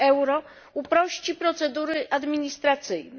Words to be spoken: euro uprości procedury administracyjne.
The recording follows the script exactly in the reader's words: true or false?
true